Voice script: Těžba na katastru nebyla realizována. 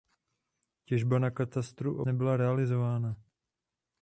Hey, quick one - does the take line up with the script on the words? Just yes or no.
yes